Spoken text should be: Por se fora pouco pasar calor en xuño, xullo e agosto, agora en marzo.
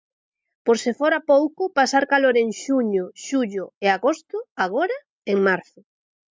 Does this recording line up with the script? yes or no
yes